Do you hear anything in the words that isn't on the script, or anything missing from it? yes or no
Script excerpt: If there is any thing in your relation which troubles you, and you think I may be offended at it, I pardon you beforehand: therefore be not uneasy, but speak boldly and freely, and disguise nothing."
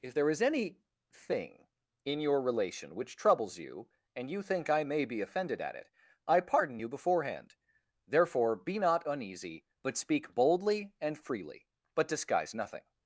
yes